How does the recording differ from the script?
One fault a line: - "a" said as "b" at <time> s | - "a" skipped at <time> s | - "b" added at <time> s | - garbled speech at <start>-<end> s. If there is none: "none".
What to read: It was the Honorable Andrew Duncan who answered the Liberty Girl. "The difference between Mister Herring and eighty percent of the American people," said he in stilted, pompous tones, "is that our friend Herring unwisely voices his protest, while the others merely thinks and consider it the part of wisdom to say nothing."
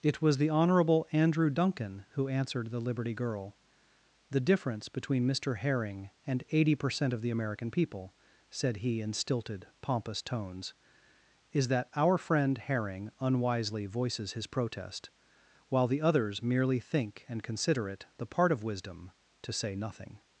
- "thinks" said as "think" at 16.8 s